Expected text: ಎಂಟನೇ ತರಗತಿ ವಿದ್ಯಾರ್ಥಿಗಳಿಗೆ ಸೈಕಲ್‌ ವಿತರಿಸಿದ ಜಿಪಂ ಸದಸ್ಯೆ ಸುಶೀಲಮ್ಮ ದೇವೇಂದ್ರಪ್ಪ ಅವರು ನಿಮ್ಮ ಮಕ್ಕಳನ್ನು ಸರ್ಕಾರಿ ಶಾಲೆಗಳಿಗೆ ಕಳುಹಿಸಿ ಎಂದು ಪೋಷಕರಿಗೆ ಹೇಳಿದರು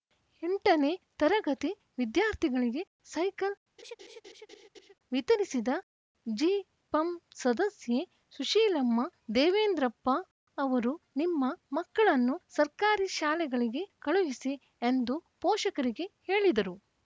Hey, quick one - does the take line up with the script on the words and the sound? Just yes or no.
no